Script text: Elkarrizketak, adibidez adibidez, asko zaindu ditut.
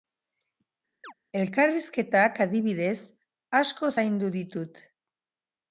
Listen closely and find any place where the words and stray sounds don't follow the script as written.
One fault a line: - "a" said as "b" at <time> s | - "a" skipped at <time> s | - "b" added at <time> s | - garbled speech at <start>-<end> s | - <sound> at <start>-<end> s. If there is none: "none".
- chirp at 1.0-1.1 s
- "adibidez" skipped at 3.0 s